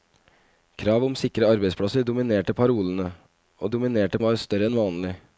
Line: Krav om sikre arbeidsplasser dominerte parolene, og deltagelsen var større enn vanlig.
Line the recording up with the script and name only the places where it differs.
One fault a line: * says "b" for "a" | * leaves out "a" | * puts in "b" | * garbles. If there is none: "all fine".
* says "dominerte" for "deltagelsen"